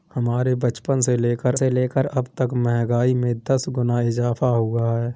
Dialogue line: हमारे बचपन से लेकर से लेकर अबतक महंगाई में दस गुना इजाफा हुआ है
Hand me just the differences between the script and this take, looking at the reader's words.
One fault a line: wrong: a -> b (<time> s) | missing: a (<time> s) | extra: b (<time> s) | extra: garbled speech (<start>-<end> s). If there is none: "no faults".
no faults